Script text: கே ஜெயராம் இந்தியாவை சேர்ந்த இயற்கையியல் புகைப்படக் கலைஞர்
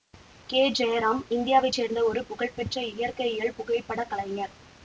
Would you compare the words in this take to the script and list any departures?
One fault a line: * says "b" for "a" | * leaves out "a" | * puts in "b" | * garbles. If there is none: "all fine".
* puts in "ஒரு புகழ்பெற்ற"